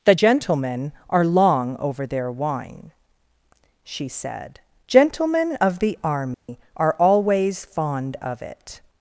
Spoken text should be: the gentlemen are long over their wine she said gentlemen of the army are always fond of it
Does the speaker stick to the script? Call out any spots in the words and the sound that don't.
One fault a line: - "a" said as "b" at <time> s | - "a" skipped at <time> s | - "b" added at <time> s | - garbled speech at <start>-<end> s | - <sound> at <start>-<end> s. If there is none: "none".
- dropout at 6.3-6.5 s